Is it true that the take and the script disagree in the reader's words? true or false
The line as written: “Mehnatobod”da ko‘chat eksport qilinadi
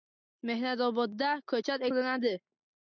true